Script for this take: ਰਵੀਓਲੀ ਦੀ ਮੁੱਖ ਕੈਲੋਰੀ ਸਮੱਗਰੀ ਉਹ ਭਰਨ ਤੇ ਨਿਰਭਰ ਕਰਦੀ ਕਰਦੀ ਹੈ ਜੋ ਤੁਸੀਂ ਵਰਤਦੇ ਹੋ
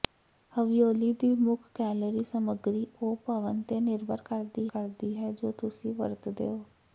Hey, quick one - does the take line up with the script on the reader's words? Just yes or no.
yes